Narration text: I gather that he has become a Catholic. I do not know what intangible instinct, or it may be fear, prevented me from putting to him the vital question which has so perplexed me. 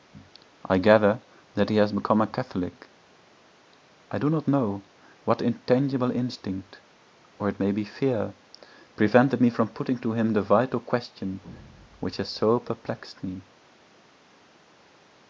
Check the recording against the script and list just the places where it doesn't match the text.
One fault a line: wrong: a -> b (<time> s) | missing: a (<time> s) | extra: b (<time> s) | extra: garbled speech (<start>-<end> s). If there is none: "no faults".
no faults